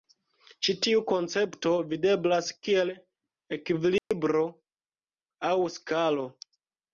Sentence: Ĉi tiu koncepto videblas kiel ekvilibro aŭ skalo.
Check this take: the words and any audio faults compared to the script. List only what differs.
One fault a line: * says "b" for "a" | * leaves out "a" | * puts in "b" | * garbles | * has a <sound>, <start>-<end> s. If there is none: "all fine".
* has a dropout, 4.0-4.1 s